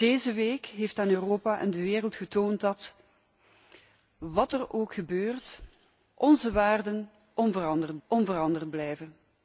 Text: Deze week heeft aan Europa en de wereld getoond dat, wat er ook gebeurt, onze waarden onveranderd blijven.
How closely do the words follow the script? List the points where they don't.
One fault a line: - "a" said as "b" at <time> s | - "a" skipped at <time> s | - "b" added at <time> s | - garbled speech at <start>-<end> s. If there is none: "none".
- "onveranderd" added at 8.1 s